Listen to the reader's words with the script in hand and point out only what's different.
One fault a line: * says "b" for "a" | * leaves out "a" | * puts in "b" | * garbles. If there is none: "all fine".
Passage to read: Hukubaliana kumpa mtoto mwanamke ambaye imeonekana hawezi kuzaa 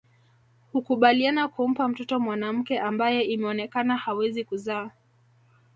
all fine